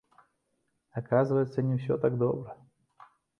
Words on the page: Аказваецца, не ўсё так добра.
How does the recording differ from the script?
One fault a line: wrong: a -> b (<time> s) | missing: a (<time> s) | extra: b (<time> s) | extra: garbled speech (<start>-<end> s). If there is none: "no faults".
no faults